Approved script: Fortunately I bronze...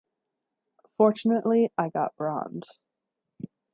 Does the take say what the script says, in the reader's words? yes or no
no